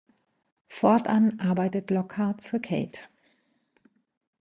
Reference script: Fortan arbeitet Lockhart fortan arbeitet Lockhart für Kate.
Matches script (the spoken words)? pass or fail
fail